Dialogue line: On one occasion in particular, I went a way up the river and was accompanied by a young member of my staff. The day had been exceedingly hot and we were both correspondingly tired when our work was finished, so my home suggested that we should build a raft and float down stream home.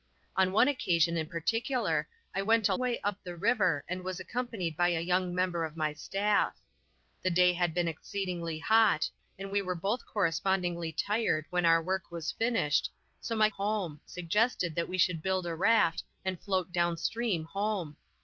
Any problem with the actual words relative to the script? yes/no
no